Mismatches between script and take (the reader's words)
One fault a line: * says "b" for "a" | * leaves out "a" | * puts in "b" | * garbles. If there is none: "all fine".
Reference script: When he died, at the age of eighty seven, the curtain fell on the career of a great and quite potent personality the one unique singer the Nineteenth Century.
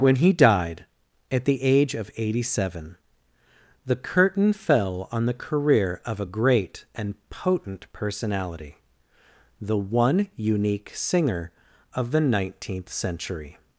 * leaves out "quite"
* puts in "of"